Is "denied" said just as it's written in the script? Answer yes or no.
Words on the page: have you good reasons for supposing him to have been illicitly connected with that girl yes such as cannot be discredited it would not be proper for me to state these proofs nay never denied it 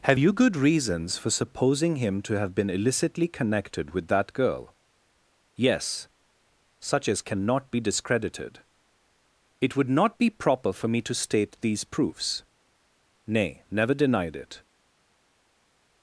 yes